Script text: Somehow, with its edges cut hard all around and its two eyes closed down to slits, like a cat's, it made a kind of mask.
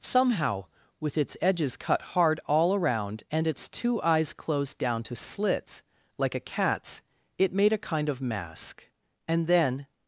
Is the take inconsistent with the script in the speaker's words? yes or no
yes